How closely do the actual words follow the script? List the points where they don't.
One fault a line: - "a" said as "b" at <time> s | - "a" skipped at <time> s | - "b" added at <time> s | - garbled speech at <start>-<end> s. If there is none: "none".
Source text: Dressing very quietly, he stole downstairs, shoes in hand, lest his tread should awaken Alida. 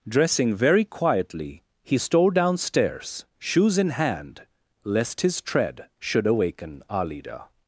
none